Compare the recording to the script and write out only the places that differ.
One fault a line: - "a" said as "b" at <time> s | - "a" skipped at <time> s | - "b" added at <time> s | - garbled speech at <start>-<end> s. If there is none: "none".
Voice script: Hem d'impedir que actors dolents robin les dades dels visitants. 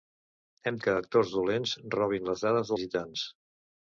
- "d'impedir" skipped at 0.8 s
- "dels" skipped at 2.7 s